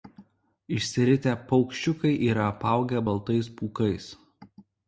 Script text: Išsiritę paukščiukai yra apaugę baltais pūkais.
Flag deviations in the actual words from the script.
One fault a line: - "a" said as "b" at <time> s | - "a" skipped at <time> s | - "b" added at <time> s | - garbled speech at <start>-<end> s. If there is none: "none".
none